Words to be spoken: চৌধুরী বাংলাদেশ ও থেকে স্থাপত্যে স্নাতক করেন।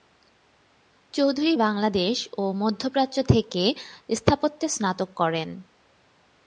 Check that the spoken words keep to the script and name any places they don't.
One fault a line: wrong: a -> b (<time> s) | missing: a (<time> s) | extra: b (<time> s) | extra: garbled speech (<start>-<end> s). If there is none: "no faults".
extra: মধ্যপ্রাচ্য (2.5 s)